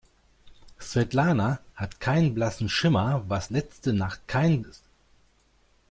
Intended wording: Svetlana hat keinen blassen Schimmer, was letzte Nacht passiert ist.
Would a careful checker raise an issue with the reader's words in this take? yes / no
yes